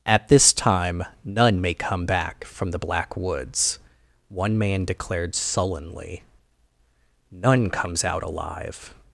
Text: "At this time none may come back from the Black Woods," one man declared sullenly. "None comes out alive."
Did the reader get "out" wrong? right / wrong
right